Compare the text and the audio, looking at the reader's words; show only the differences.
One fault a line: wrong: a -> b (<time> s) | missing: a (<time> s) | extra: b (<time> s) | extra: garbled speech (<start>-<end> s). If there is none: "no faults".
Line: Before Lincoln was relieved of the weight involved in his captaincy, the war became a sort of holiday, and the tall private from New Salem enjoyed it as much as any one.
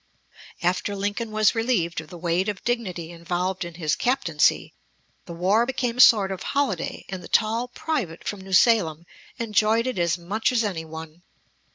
wrong: Before -> After (0.6 s)
extra: of dignity (2.5 s)